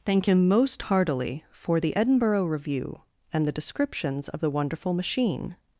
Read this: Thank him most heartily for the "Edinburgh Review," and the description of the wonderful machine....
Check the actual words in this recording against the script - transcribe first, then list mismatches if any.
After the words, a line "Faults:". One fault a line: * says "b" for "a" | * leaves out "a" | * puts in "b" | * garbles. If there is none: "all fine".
Thank him most heartily for the "Edinburgh Review," and the descriptions of the wonderful machine....
Faults:
* says "descriptions" for "description"